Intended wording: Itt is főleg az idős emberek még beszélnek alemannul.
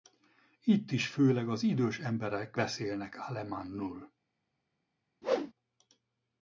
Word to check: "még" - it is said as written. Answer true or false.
false